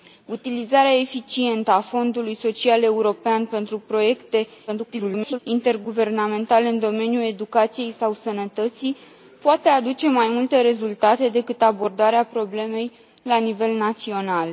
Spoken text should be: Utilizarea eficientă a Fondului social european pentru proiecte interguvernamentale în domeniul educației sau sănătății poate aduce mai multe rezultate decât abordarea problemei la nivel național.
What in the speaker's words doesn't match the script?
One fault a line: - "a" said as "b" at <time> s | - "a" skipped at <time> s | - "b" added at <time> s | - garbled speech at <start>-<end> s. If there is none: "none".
- garbled speech at 4.7-5.4 s